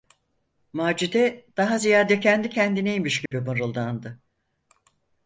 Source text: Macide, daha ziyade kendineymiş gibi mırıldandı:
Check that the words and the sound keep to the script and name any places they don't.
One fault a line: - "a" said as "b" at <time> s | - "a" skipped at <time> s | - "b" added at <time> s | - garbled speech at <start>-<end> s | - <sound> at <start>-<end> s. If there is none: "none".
- "kendi" added at 2.2 s
- dropout at 3.3-3.3 s